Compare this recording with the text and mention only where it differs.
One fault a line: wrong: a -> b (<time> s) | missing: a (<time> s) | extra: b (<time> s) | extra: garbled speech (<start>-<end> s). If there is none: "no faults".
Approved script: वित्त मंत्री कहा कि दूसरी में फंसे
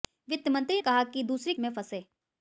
no faults